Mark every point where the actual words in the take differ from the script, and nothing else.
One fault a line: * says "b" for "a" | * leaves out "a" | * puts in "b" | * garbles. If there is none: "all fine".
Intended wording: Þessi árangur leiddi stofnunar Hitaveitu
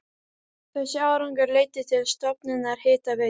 * puts in "til"